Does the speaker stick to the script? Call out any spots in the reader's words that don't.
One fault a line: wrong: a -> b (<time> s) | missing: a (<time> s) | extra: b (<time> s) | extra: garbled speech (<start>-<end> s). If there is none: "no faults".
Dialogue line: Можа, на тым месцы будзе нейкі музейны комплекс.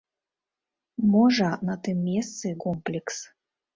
missing: будзе нейкі музейны (2.5 s)